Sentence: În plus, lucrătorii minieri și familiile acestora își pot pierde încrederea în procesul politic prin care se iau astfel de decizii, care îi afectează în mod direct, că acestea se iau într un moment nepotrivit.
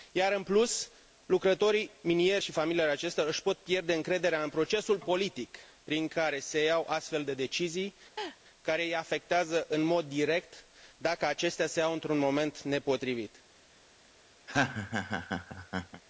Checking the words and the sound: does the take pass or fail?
fail